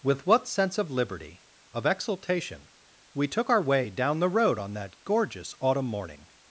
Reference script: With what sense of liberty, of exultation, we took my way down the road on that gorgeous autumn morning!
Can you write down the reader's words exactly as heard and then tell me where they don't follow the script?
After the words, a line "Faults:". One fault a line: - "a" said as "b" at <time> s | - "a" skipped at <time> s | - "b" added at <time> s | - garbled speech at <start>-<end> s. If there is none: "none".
With what sense of liberty, of exultation, we took our way down the road on that gorgeous autumn morning!
Faults:
- "my" said as "our" at 3.5 s